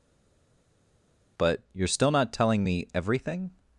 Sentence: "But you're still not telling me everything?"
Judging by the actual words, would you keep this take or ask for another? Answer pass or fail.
pass